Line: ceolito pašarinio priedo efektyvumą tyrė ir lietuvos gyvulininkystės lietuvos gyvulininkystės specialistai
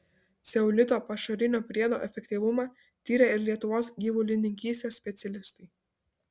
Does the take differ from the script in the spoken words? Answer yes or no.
yes